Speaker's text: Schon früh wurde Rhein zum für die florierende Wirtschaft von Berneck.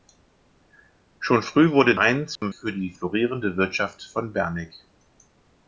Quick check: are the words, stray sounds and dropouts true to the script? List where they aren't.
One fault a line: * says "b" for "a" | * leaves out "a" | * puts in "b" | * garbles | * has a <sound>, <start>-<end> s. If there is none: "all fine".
* has a dropout, 2.4-2.4 s